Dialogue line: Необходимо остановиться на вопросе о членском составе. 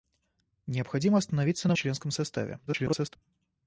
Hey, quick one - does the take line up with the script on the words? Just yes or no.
no